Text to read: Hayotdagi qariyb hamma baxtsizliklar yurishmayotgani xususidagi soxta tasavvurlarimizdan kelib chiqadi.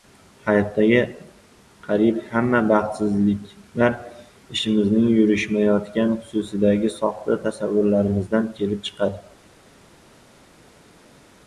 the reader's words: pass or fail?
fail